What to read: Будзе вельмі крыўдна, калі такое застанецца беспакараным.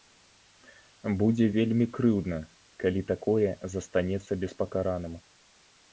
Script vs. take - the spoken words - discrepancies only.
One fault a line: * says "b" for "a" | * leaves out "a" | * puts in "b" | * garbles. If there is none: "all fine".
all fine